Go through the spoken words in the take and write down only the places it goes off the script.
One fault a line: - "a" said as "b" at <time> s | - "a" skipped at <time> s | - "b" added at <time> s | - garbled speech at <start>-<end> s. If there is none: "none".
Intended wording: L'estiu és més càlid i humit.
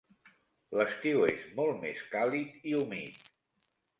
- "molt" added at 1.6 s